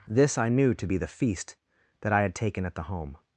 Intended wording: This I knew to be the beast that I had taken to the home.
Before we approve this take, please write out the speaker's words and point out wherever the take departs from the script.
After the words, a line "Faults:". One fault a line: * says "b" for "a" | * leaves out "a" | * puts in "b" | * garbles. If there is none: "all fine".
This I knew to be the feast that I had taken at the home.
Faults:
* says "feast" for "beast"
* says "at" for "to"